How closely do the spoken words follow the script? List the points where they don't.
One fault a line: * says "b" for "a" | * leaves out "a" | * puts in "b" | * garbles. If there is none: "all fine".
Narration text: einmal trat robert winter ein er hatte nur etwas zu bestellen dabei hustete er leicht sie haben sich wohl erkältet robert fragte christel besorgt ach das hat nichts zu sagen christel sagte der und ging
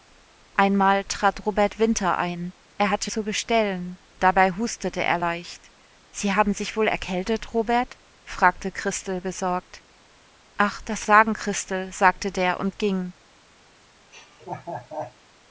* leaves out "nur etwas"
* leaves out "hat nichts zu"